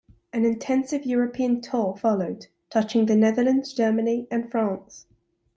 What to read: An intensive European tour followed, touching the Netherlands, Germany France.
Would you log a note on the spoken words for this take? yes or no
yes